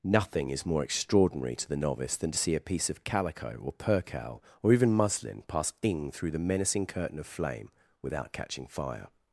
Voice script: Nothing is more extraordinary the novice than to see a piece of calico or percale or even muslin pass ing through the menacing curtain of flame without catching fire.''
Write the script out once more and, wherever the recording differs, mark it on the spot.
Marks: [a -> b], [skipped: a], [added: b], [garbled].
Nothing is more extraordinary [added: to] the novice than to see a piece of calico or percale or even muslin pass ing through the menacing curtain of flame without catching fire.''